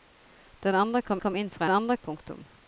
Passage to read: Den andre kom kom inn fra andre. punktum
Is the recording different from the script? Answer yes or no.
no